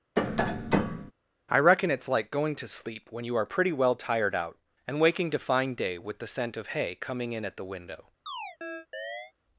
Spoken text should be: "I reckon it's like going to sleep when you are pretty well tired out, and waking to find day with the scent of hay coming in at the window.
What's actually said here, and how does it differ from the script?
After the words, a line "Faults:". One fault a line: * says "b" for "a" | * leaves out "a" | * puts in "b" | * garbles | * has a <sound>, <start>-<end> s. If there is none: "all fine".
"I reckon it's like going to sleep when you are pretty well tired out, and waking to find day with the scent of hay coming in at the window.
Faults:
* has a tap, 0.2-1.1 s
* has a chirp, 8.3-9.3 s